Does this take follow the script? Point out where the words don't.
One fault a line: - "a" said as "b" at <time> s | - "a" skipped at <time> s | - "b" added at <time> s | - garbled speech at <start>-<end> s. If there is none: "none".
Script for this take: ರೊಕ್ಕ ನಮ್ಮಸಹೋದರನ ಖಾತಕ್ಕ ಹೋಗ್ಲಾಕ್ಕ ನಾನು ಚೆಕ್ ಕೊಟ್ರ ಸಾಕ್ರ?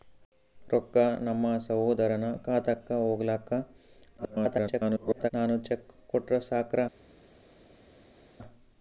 - garbled speech at 4.2-5.3 s